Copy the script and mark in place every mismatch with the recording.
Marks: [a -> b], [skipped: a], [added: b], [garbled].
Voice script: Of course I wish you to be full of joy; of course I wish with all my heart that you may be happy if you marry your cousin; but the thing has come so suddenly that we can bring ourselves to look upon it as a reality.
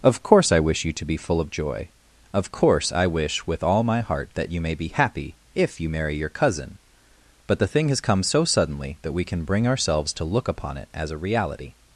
Of course I wish you to be full of joy; of course I wish with all my heart that you may be happy if you marry your cousin; but the thing has come so suddenly that we can bring ourselves to look upon it as a reality.